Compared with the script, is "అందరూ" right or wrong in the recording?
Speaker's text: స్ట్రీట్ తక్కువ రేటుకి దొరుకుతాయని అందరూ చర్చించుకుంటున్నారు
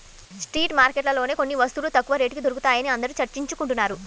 right